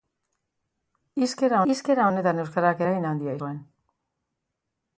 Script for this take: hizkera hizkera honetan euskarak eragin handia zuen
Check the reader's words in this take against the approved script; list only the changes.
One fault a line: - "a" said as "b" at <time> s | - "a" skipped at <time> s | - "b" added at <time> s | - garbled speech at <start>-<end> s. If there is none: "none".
none